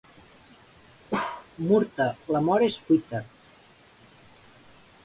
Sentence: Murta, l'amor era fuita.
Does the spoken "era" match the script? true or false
false